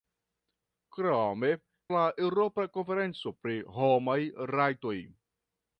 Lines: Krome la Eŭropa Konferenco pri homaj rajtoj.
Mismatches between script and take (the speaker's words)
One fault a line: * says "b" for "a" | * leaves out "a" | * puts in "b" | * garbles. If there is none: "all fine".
all fine